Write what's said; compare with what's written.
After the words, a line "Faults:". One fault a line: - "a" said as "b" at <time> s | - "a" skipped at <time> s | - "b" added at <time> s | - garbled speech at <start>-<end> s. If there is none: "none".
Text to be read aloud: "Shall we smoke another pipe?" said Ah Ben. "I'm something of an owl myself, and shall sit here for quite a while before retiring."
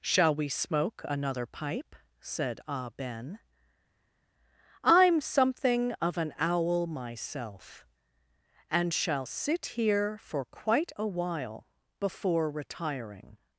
"Shall we smoke another pipe?" said Ah Ben. "I'm something of an owl myself, and shall sit here for quite a while before retiring."
Faults:
none